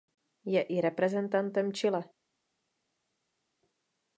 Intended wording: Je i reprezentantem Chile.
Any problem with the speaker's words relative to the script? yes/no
no